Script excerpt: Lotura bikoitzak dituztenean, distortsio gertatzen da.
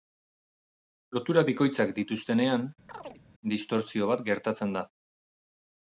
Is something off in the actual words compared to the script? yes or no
yes